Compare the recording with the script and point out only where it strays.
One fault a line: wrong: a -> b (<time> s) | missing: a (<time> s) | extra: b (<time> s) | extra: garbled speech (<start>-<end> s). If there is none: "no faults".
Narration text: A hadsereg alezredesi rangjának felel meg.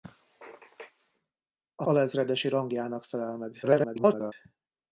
missing: hadsereg (1.9 s)
extra: garbled speech (3.6-4.3 s)